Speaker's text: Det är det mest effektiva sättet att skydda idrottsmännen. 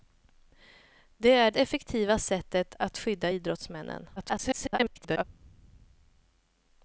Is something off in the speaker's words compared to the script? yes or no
yes